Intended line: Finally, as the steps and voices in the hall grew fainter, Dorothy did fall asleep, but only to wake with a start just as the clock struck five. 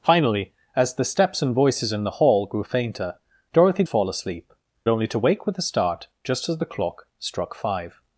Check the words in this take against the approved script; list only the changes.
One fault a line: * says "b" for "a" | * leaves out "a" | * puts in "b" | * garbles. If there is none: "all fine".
* leaves out "did"
* leaves out "but"